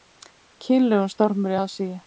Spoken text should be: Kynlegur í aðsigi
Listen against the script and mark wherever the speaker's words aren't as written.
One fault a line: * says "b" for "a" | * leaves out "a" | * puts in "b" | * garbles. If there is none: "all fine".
* puts in "stormur"